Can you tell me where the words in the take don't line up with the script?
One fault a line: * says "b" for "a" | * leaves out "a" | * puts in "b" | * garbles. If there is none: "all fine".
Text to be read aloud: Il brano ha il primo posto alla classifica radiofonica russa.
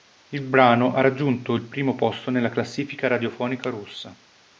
* puts in "raggiunto"
* says "nella" for "alla"